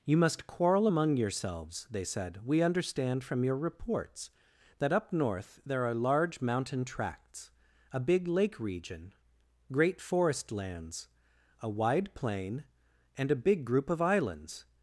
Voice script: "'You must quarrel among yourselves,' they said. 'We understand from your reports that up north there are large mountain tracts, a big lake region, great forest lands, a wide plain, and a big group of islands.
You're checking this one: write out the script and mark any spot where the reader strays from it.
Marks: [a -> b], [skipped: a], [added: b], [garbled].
"'You must quarrel among yourselves,' they said. 'We understand from your reports that up north there are large mountain tracts, a big lake region, great forest lands, a wide plain, and a big group of islands.